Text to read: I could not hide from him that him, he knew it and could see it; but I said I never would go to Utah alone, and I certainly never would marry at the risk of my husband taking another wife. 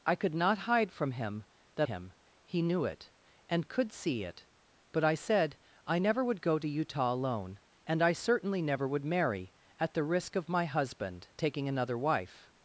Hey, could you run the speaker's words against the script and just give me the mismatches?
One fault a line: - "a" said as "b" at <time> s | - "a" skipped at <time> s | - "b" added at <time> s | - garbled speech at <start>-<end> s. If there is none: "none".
none